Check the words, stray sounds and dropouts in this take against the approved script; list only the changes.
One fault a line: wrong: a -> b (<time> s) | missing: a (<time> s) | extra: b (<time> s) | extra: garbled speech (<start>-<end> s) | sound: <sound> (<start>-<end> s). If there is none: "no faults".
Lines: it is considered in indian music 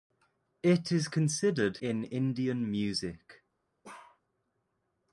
sound: bark (3.8-4.2 s)